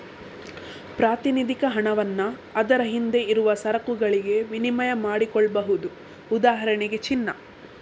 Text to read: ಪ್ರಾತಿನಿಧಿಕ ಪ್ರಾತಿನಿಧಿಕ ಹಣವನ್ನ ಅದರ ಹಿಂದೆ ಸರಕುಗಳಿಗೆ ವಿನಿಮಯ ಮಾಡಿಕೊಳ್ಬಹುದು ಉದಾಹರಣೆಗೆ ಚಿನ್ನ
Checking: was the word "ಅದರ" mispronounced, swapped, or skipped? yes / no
no